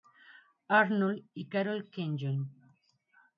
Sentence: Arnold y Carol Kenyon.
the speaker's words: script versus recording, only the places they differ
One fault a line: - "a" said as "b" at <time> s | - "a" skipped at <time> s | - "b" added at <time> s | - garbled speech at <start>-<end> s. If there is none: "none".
none